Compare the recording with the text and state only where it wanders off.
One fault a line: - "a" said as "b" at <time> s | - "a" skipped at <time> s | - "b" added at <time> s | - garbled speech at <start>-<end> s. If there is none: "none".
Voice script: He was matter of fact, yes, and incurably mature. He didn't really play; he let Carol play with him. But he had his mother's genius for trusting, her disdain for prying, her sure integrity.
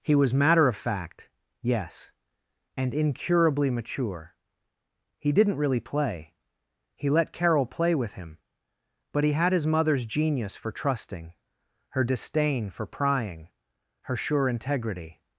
none